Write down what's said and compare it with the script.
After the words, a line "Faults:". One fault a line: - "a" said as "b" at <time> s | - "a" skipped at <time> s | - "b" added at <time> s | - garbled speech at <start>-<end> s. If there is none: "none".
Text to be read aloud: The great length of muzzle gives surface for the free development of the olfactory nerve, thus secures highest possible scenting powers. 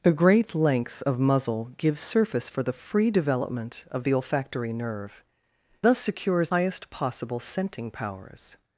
The great length of muzzle gives surface for the free development of the olfactory nerve, thus secures highest possible scenting powers.
Faults:
none